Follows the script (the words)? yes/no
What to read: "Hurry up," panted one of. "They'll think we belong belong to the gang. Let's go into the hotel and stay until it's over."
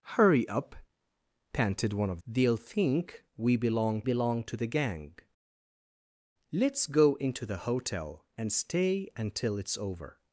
yes